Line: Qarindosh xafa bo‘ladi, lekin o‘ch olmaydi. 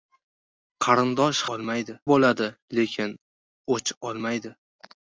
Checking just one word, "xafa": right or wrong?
wrong